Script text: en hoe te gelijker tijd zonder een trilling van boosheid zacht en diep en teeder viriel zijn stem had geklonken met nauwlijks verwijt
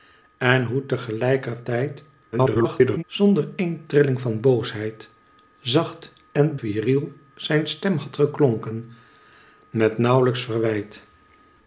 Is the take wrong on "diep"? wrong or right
wrong